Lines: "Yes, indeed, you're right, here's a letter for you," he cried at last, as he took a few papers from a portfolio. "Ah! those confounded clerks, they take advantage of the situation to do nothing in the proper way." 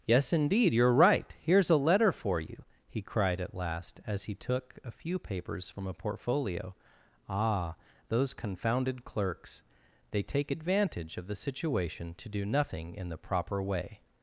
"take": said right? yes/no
yes